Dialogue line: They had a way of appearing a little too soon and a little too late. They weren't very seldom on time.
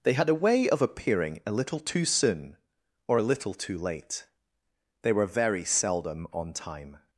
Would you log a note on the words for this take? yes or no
yes